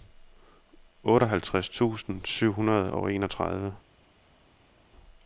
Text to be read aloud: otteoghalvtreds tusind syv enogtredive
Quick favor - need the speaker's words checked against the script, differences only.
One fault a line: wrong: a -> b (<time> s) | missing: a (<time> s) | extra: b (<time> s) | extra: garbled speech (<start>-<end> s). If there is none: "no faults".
extra: hundrede og (2.5 s)